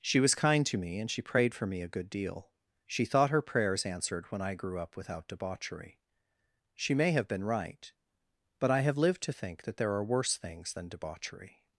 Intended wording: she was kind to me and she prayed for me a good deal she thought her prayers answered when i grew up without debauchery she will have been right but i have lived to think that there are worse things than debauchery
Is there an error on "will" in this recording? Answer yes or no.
yes